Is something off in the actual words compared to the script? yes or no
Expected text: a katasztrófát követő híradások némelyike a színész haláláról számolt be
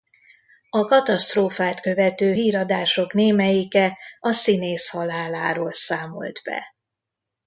no